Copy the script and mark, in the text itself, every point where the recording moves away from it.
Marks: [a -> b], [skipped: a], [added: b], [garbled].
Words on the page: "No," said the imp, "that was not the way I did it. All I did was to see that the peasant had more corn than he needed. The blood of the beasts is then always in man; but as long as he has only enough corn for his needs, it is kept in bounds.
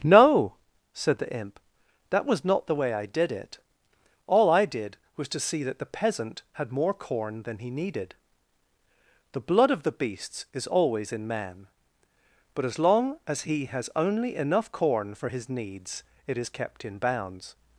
"No," said the imp, "that was not the way I did it. All I did was to see that the peasant had more corn than he needed. The blood of the beasts is [skipped: then] always in man; but as long as he has only enough corn for his needs, it is kept in bounds.